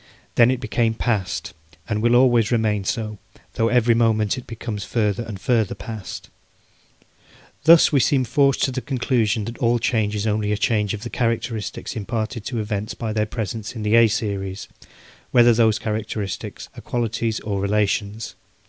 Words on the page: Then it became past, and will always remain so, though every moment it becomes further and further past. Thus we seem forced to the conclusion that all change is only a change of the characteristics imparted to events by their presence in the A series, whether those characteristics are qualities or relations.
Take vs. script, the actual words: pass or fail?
pass